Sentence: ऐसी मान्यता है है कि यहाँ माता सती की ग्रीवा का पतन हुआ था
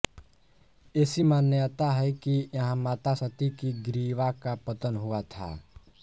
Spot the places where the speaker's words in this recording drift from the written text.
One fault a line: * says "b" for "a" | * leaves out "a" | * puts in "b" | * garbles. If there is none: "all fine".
* leaves out "है"